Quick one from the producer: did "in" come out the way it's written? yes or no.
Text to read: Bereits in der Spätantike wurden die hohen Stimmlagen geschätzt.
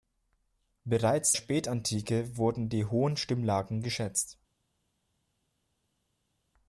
no